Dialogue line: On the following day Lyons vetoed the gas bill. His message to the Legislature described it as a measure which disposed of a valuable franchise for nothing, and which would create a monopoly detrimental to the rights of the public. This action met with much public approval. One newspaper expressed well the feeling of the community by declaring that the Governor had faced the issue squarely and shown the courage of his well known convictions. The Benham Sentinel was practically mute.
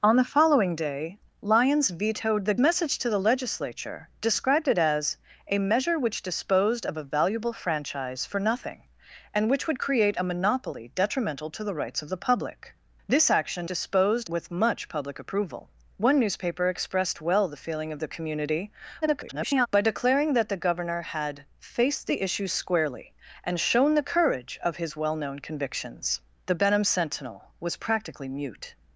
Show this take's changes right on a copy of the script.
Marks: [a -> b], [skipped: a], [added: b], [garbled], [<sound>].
On the following day Lyons vetoed the [skipped: gas bill. His] message to the Legislature described it as a measure which disposed of a valuable franchise for nothing, and which would create a monopoly detrimental to the rights of the public. This action [met -> disposed] with much public approval. One newspaper expressed well the feeling of the community [garbled] by declaring that the Governor had faced the issue squarely and shown the courage of his well known convictions. The Benham Sentinel was practically mute.